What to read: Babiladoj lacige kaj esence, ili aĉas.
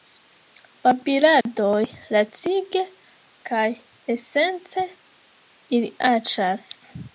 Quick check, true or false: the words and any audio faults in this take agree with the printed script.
false